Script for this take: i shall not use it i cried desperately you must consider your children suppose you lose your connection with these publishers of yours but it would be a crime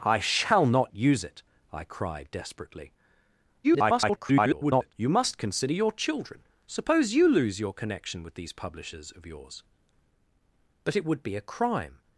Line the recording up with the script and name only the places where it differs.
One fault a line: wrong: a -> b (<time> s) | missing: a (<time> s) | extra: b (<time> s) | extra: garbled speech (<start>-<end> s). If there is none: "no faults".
extra: garbled speech (3.6-4.9 s)